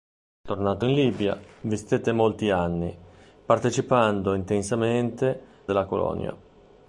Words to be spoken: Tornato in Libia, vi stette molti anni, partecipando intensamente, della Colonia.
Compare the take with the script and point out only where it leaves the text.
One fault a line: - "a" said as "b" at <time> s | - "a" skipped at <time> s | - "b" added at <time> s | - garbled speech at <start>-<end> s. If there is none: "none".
none